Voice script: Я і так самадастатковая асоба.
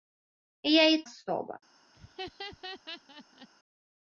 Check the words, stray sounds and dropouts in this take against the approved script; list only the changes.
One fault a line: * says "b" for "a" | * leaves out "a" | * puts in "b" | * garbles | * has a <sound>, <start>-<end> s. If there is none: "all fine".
* leaves out "так самадастатковая"
* has a laugh, 1.9-3.5 s